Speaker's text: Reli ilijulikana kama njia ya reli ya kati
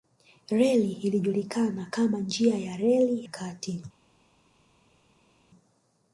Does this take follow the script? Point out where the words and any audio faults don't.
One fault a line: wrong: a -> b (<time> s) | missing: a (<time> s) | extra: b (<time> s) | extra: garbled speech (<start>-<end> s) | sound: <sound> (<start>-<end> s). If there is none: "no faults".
missing: ya (3.3 s)